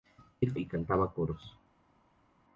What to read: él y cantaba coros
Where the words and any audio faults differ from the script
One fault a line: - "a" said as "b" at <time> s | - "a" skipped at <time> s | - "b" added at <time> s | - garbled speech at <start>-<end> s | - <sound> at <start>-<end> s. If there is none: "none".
none